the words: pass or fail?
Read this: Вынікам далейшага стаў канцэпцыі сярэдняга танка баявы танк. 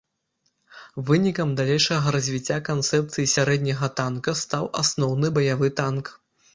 fail